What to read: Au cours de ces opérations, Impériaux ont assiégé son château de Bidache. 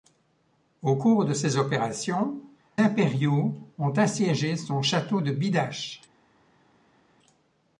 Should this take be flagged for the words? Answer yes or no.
no